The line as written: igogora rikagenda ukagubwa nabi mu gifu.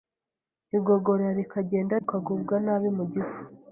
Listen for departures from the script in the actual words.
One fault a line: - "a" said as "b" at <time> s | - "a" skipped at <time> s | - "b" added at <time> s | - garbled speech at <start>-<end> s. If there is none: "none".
none